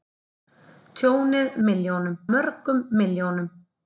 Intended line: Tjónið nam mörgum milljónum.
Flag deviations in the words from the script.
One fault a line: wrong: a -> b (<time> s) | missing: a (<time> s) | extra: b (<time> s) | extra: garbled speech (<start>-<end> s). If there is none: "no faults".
wrong: nam -> milljónum (1.7 s)